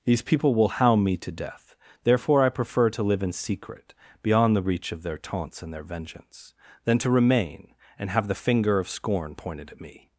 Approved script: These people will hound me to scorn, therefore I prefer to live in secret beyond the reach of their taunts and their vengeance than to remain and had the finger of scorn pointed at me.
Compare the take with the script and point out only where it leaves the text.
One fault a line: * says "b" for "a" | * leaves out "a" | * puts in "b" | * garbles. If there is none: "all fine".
* says "death" for "scorn"
* says "have" for "had"